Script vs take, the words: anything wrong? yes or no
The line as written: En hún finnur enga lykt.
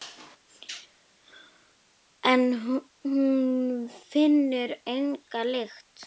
no